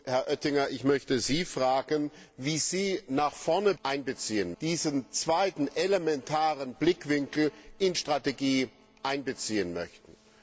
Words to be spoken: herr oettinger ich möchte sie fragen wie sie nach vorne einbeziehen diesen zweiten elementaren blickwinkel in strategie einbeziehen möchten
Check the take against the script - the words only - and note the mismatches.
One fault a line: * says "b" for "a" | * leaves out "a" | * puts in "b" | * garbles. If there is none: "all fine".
all fine